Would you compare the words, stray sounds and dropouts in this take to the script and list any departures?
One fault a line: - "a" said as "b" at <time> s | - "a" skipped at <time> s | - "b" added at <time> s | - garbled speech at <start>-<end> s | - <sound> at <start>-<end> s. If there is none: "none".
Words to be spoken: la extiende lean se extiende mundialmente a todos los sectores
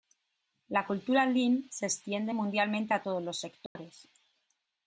- "extiende" said as "cultura" at 0.9 s
- dropout at 3.7-3.8 s